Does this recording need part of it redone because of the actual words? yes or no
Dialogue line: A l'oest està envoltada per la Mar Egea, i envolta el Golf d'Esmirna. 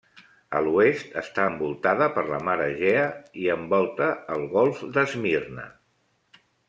no